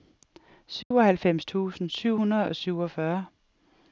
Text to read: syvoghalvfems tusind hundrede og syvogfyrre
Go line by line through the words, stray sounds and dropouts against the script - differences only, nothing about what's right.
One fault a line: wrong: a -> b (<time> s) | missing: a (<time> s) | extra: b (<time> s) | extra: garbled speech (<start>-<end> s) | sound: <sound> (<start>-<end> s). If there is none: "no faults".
sound: dropout (0.8-0.9 s)
extra: syv (1.9 s)